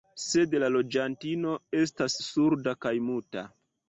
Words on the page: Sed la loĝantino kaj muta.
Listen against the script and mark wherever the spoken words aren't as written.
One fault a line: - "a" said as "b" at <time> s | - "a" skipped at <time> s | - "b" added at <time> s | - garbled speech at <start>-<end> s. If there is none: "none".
- "estas surda" added at 1.8 s